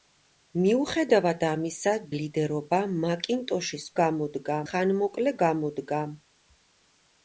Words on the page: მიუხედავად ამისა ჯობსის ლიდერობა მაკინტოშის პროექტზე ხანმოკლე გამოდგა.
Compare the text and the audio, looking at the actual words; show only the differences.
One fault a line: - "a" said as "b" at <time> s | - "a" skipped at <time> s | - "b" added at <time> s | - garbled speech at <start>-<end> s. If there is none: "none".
- "ჯობსის" skipped at 1.9 s
- "პროექტზე" said as "გამოდგა" at 4.0 s